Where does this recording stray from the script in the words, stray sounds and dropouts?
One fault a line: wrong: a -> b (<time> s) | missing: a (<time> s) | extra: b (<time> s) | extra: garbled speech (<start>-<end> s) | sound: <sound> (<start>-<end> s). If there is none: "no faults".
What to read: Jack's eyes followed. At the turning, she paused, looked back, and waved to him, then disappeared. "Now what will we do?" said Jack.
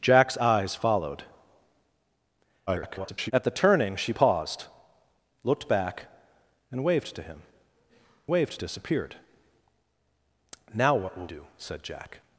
extra: garbled speech (2.7-3.3 s)
wrong: then -> waved (8.3 s)
missing: we (11.3 s)